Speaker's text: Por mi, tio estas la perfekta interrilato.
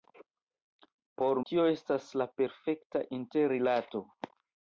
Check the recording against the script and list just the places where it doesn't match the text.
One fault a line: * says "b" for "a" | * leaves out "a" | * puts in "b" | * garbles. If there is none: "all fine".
* leaves out "mi"